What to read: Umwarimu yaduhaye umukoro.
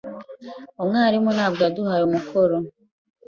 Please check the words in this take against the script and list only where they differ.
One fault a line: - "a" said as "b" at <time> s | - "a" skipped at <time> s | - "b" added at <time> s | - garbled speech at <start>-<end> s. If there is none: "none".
- "ntabwo" added at 1.4 s